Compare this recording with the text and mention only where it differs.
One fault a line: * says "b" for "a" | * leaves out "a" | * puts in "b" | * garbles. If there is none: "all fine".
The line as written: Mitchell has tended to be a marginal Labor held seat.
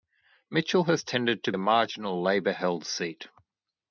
* leaves out "be"